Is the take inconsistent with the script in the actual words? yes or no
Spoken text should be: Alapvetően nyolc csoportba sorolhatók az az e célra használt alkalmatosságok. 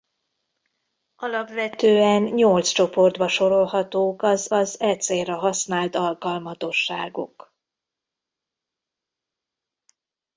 no